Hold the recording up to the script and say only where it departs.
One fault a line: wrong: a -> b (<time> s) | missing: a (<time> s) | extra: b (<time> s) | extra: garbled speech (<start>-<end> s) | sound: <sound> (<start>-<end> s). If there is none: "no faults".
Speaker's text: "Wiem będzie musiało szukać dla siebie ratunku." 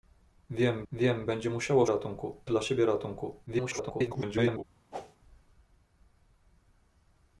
extra: wiem (0.9 s)
wrong: szukać -> ratunku (1.9 s)
extra: garbled speech (3.5-4.6 s)
sound: whoosh (4.9-5.2 s)